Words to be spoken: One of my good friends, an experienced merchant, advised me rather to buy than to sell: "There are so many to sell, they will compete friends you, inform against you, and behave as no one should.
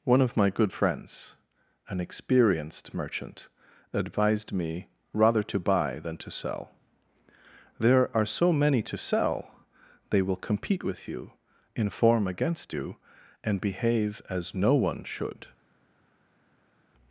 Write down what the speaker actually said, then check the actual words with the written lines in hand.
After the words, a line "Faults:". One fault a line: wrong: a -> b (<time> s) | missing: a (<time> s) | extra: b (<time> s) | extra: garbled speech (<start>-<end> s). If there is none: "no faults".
One of my good friends, an experienced merchant, advised me rather to buy than to sell: "There are so many to sell, they will compete with you, inform against you, and behave as no one should.
Faults:
wrong: friends -> with (10.8 s)